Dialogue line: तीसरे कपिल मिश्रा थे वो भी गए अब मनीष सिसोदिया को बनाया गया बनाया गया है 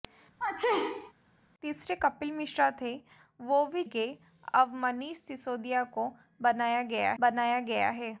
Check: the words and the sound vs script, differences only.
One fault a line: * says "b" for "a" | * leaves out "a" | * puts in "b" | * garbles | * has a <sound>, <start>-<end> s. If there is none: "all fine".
* has a sneeze, 0.4-1.1 s